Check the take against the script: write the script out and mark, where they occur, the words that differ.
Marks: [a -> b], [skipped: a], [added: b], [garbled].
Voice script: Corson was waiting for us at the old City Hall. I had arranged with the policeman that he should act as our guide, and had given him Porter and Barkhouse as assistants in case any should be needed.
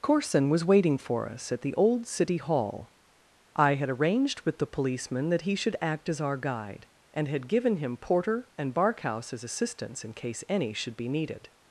Corson was waiting for us at the old City Hall. I had arranged with the policeman that he should act as our guide, and had given him Porter and Barkhouse as assistants in case any should be needed.